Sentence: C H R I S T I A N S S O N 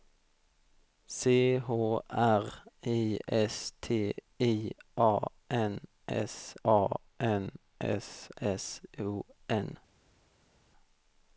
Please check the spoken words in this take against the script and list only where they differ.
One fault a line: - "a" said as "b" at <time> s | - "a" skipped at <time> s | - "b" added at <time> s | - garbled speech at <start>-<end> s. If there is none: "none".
- "A N S" added at 6.6 s